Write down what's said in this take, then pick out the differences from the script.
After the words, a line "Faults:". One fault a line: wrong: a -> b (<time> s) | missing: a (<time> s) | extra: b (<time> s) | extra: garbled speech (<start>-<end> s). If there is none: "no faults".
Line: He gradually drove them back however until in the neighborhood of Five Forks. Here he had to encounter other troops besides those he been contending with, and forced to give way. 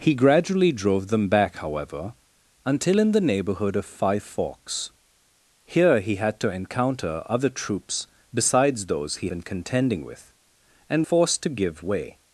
He gradually drove them back however until in the neighborhood of Five Forks. Here he had to encounter other troops besides those he been contending with, and forced to give way.
Faults:
no faults